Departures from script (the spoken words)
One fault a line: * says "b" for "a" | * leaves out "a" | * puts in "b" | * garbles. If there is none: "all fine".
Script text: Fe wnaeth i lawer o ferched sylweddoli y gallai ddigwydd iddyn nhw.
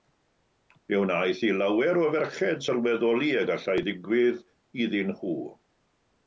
all fine